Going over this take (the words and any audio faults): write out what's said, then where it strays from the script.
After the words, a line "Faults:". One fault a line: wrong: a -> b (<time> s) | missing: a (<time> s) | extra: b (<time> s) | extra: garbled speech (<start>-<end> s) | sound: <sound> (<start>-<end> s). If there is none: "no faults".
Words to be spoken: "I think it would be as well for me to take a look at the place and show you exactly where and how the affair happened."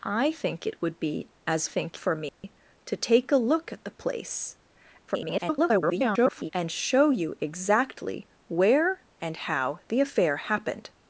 "I think it would be as think for me to take a look at the place [garbled] and show you exactly where and how the affair happened."
Faults:
wrong: well -> think (1.6 s)
sound: dropout (2.3-2.4 s)
extra: garbled speech (5.1-6.5 s)